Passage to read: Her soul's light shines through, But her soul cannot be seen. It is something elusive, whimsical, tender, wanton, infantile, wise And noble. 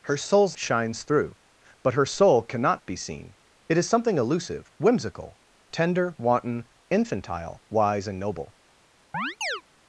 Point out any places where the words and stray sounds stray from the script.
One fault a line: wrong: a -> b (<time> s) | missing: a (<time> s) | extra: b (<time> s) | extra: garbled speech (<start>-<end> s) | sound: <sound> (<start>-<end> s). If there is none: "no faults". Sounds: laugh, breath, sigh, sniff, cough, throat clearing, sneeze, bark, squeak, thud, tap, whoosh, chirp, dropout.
missing: light (0.6 s)
sound: chirp (9.1-9.6 s)